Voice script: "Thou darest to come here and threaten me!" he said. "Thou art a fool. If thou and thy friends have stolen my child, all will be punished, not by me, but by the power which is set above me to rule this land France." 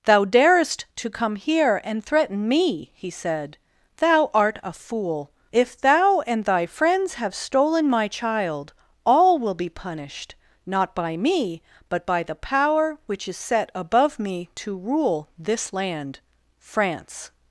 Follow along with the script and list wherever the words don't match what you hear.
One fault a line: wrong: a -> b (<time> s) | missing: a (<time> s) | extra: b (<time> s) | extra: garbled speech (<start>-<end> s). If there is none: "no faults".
no faults